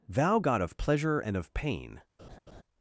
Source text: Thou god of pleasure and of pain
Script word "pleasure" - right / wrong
right